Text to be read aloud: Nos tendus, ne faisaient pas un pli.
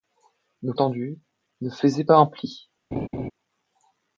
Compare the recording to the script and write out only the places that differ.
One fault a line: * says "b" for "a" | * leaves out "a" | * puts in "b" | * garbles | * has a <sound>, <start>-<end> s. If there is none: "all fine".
* has a laugh, 2.9-3.3 s